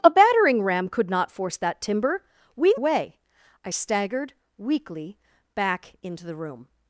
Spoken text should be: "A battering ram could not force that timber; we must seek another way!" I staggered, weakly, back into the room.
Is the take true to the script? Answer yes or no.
no